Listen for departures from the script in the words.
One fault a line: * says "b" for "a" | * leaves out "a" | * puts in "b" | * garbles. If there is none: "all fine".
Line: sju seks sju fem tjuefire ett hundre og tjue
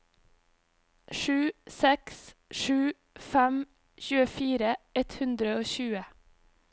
all fine